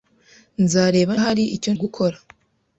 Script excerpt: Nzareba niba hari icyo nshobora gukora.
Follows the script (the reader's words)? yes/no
no